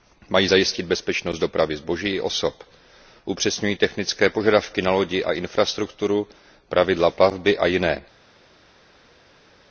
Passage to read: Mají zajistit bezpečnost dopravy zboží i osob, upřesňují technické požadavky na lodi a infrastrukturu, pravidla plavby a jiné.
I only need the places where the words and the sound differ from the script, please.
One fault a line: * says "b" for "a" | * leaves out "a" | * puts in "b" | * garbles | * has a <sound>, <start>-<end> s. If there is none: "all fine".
all fine